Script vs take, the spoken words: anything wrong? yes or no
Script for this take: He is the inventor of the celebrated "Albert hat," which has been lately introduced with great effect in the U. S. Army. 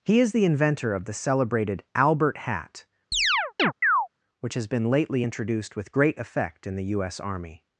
no